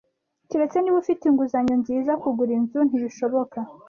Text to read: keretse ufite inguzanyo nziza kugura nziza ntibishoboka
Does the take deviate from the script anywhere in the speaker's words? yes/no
yes